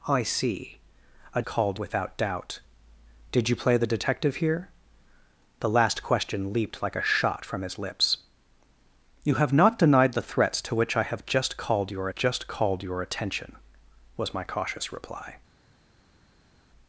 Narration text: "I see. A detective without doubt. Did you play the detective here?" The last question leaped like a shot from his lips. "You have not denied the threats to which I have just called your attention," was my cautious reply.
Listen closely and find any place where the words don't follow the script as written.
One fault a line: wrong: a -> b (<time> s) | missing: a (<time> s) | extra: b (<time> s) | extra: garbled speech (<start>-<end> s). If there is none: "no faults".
wrong: detective -> called (1.4 s)
extra: just called your (12.1 s)